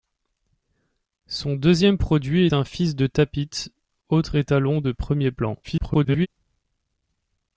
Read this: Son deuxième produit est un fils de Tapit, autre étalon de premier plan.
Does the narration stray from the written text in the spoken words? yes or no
yes